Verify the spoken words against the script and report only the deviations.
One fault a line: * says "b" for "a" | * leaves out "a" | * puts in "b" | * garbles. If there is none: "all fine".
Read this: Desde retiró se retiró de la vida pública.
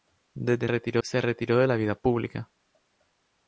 all fine